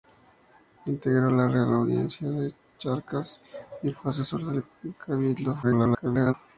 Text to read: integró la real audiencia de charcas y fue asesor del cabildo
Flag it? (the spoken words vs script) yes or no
yes